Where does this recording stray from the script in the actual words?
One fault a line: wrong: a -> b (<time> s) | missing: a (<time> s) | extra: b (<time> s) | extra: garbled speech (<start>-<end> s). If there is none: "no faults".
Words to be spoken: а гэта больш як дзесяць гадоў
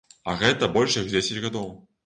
no faults